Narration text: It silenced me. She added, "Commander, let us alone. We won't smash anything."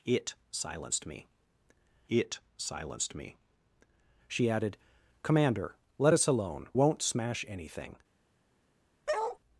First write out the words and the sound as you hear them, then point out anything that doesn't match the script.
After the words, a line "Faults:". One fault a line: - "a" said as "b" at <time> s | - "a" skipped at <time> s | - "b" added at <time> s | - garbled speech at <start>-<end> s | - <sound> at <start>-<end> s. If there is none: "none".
It silenced me it silenced me. She added, "Commander, let us alone. Won't smash anything."
Faults:
- "it silenced me" added at 2.1 s
- "We" skipped at 6.7 s
- bark at 9.1-9.4 s